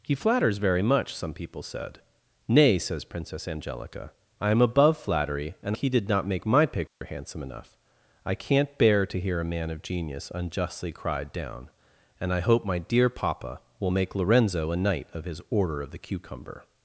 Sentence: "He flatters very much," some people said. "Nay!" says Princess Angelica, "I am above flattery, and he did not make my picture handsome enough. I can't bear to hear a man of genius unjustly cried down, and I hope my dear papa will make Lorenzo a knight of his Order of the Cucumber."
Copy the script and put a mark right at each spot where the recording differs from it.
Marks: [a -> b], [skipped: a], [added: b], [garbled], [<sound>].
"He flatters very much," some people said. "Nay!" says Princess Angelica, "I am above flattery, and he did not make my picture [dropout] handsome enough. I can't bear to hear a man of genius unjustly cried down, and I hope my dear papa will make Lorenzo a knight of his Order of the Cucumber."